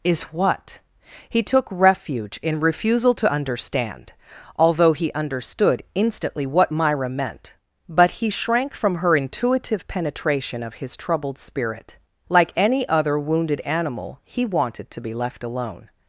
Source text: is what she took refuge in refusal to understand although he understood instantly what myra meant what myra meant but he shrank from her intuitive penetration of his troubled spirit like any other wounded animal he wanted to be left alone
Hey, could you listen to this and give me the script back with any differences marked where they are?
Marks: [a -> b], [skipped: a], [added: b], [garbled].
is what [she -> he] took refuge in refusal to understand although he understood instantly what myra meant [skipped: what myra meant] but he shrank from her intuitive penetration of his troubled spirit like any other wounded animal he wanted to be left alone